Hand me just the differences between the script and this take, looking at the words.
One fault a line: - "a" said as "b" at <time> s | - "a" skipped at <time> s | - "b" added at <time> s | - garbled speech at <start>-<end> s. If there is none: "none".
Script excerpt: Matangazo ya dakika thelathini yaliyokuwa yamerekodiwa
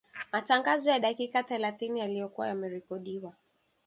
none